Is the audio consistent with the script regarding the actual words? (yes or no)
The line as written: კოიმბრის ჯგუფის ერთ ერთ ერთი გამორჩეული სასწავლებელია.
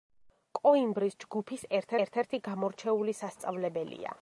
yes